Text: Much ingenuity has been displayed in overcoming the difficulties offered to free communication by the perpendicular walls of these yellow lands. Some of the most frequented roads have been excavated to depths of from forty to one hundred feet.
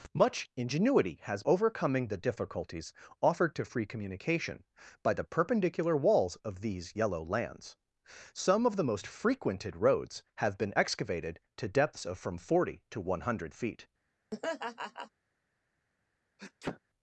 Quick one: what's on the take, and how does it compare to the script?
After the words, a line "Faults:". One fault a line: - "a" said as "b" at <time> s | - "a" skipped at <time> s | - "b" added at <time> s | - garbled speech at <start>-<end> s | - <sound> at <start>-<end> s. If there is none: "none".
Much ingenuity has overcoming the difficulties offered to free communication by the perpendicular walls of these yellow lands. Some of the most frequented roads have been excavated to depths of from forty to one hundred feet.
Faults:
- "been displayed in" skipped at 1.4 s
- laugh at 14.3-15.1 s
- sneeze at 16.4-16.8 s